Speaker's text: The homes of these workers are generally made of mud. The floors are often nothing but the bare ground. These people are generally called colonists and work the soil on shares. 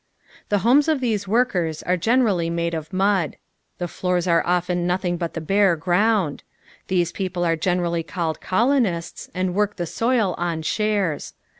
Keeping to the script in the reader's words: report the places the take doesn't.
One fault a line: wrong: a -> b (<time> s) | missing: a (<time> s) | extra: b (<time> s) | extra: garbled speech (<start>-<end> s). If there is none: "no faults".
no faults